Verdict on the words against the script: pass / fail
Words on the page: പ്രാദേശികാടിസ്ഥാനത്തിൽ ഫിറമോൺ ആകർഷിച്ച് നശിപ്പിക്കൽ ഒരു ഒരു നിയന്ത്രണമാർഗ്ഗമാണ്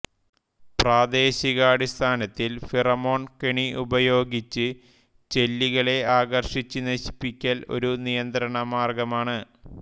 fail